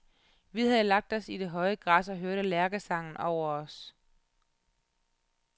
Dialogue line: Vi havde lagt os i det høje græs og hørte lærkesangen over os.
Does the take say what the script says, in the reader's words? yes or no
yes